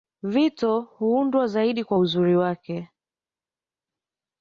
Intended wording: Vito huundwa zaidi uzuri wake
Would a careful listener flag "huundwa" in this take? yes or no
no